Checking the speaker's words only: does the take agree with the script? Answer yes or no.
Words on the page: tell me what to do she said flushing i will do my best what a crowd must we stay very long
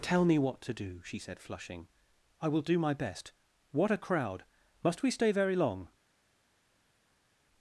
yes